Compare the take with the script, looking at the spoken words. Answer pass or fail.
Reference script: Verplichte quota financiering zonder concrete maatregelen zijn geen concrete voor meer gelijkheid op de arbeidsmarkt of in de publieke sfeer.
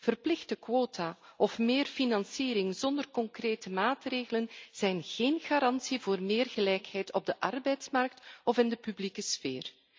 fail